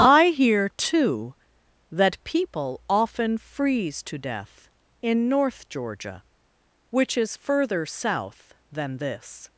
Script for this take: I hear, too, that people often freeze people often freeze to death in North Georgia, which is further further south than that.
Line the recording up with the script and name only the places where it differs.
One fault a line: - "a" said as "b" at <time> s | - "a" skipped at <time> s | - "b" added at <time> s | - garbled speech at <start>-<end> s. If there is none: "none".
- "people often freeze" skipped at 4.0 s
- "further" skipped at 7.8 s
- "that" said as "this" at 9.0 s